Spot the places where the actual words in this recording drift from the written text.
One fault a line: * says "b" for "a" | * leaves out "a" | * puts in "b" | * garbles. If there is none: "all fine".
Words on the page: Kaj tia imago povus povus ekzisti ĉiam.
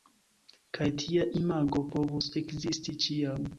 * leaves out "povus"